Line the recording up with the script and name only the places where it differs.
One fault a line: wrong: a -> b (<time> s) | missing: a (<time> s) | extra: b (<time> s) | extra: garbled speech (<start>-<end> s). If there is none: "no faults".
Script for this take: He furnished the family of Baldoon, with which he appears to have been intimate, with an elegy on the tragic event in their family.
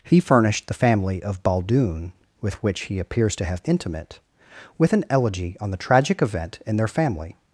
missing: been (3.6 s)